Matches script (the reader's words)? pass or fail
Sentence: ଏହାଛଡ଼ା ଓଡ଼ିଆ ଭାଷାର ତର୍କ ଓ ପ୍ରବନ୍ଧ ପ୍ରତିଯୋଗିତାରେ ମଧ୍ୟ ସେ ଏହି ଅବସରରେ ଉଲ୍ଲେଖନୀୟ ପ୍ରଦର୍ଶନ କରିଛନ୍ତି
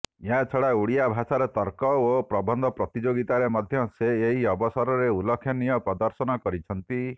pass